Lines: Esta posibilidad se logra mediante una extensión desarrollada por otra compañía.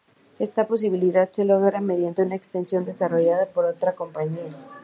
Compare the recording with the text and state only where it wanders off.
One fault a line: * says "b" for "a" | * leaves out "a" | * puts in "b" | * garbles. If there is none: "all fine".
all fine